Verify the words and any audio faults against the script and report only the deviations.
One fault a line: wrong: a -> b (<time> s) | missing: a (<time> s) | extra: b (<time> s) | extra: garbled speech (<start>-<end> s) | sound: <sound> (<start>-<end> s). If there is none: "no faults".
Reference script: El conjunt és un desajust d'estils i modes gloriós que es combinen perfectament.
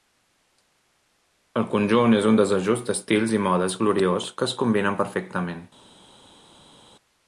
no faults